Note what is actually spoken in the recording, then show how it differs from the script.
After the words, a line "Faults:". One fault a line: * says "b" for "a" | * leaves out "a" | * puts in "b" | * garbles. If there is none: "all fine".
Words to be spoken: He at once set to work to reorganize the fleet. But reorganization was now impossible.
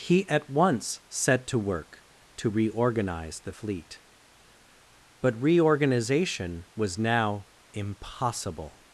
He at once set to work to reorganize the fleet. But reorganization was now impossible.
Faults:
all fine